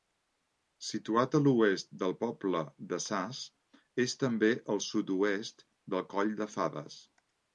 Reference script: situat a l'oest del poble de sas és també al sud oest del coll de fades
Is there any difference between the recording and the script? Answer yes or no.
no